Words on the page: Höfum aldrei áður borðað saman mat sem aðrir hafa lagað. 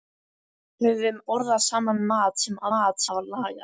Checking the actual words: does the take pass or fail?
fail